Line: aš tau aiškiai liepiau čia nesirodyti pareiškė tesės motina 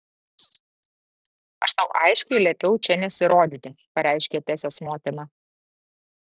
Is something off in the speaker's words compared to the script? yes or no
no